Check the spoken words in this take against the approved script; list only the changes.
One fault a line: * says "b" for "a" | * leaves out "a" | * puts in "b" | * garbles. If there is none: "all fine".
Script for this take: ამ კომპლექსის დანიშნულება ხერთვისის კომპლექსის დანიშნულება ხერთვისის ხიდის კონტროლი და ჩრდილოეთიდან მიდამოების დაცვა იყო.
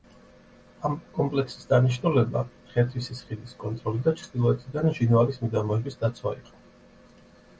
* leaves out "კომპლექსის დანიშნულება ხერთვისის"
* puts in "ჟინვალის"